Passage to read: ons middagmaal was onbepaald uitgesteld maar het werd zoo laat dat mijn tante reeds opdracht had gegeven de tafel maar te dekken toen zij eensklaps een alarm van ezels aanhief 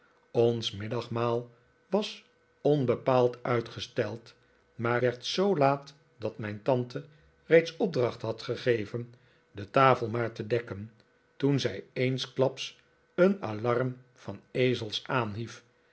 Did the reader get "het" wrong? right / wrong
wrong